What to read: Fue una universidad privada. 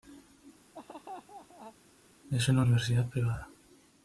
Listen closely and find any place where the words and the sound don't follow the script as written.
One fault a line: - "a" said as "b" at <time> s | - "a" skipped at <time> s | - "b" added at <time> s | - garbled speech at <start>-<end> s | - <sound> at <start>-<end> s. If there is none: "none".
- laugh at 0.7-1.8 s
- "Fue" said as "Es" at 2.3 s